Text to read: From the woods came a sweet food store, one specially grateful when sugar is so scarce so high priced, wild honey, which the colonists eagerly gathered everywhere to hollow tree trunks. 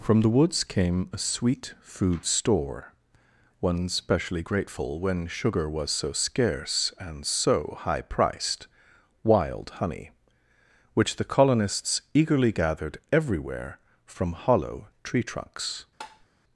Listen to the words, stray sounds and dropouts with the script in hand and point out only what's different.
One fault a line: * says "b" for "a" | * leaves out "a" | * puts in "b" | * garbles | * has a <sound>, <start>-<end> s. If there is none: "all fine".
* says "was" for "is"
* puts in "and"
* says "from" for "to"
* has a tap, 16.0-16.3 s